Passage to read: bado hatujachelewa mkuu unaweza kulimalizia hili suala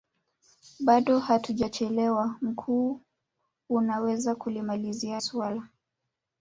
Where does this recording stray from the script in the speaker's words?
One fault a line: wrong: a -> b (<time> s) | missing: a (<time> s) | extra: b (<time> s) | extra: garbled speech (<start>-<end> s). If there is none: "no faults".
missing: hili (5.2 s)